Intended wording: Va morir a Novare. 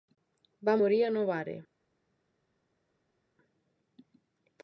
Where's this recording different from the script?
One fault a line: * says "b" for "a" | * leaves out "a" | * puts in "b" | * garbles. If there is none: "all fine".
all fine